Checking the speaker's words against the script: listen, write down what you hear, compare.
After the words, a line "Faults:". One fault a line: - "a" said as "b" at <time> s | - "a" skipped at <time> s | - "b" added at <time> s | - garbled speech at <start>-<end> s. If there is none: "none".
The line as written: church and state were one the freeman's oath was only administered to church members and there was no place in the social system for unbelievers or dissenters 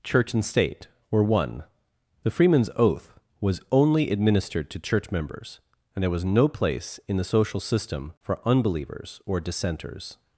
church and state were one the freeman's oath was only administered to church members and there was no place in the social system for unbelievers or dissenters
Faults:
none